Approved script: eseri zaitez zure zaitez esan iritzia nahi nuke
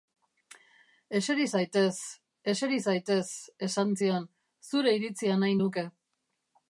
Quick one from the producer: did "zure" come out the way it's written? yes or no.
no